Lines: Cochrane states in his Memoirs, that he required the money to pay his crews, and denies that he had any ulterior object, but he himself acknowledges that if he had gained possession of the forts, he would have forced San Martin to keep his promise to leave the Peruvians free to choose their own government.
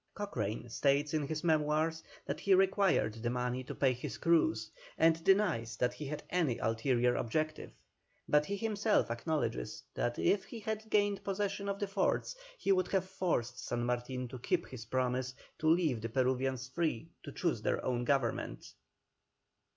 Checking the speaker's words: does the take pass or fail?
pass